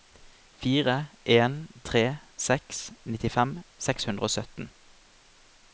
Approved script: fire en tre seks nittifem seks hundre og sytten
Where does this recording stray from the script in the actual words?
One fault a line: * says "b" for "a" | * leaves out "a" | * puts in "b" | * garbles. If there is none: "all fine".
all fine